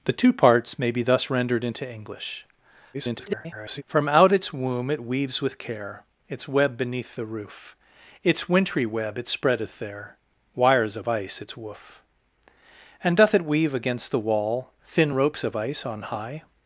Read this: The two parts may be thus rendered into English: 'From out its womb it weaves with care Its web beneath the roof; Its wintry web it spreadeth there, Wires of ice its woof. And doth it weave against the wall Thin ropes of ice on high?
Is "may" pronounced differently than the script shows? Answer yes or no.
no